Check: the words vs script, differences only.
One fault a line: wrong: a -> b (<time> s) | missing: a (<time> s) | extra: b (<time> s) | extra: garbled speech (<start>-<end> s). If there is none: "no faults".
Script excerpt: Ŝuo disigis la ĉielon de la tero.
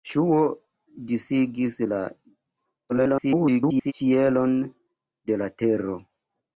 extra: garbled speech (2.9-3.9 s)